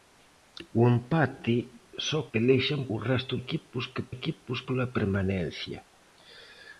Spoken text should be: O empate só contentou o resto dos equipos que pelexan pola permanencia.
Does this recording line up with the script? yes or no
no